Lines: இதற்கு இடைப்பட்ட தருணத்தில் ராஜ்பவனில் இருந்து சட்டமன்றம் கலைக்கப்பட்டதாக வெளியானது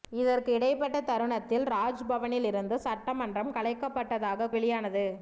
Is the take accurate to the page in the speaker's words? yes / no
yes